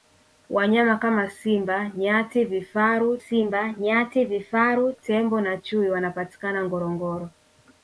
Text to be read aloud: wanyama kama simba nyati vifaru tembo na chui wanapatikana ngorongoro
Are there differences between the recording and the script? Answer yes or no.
yes